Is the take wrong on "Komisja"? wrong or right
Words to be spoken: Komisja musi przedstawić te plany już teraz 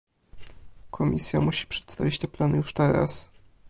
right